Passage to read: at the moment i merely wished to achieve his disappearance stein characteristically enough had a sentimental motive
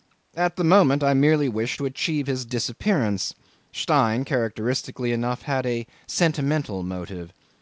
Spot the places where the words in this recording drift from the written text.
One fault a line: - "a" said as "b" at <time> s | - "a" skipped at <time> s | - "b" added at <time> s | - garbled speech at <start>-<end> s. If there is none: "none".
none